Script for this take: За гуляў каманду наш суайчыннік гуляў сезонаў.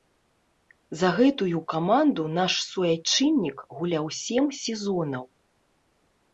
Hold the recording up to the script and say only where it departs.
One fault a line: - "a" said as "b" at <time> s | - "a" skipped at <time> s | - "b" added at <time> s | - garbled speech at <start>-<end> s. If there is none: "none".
- "гуляў" said as "гэтую" at 1.2 s
- "сем" added at 4.2 s